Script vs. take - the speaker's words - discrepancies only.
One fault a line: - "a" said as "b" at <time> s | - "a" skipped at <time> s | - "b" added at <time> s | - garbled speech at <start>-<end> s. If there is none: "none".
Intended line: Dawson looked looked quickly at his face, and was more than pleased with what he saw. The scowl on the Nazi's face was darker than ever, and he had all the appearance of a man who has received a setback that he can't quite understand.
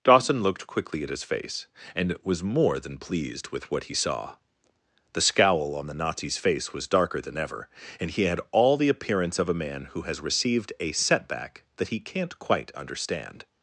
- "looked" skipped at 0.7 s